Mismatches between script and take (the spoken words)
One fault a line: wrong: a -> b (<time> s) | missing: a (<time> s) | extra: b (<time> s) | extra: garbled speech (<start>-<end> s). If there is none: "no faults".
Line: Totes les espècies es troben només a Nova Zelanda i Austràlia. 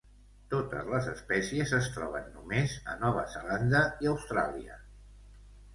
no faults